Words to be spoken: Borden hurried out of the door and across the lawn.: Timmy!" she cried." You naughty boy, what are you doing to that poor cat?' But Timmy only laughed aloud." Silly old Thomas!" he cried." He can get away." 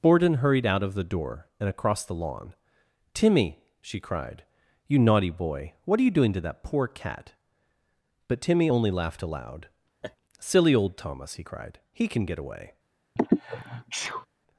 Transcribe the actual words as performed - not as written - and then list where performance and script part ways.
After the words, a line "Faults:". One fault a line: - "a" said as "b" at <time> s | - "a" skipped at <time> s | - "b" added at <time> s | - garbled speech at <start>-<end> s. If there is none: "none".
Borden hurried out of the door and across the lawn.: Timmy!" she cried." You naughty boy, what are you doing to that poor cat?' But Timmy only laughed aloud." Silly old Thomas!" he cried." He can get away."
Faults:
none